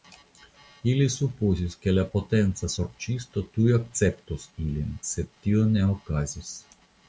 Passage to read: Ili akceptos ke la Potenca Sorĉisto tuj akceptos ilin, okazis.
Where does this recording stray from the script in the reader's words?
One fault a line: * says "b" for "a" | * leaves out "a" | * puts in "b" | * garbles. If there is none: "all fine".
* says "supozis" for "akceptos"
* puts in "sed tio ne"